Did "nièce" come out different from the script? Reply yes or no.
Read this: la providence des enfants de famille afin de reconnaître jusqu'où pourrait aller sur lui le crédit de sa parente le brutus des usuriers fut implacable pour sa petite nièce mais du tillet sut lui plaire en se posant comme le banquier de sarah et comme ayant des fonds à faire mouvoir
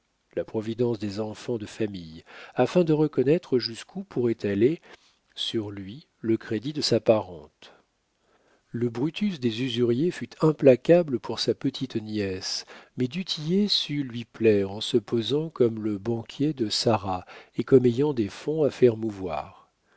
no